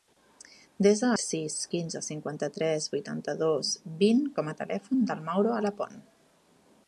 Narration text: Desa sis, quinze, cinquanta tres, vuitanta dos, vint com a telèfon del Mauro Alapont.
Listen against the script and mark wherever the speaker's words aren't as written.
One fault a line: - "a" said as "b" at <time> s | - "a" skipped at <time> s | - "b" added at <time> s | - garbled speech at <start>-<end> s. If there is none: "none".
none